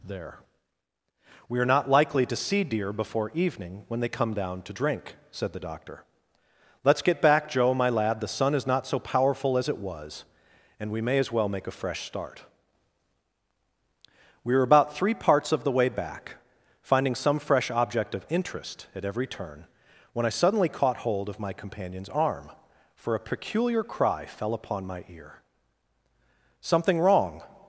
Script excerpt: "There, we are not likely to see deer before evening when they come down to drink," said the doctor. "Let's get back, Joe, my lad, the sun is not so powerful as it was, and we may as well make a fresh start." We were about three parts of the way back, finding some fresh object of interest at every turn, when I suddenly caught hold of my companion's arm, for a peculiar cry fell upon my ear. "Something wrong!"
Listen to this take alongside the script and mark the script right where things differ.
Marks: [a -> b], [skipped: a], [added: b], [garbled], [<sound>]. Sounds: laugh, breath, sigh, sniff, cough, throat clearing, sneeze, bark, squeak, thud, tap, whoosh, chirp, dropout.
"There, we are not likely to see deer before evening when they come down to drink," said the doctor. "Let's get back, Joe, my lad, the sun is not so powerful as it was, and we may as well make a fresh start." We were about three parts of the way back, finding some fresh object of interest at every turn, when I suddenly caught hold of my companion's arm, for a peculiar cry fell upon my ear. "Something wrong!"